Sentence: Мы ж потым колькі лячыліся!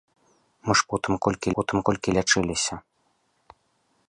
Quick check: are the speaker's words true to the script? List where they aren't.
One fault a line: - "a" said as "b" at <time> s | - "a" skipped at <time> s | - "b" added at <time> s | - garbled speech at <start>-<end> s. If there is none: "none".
- "потым колькі" added at 1.6 s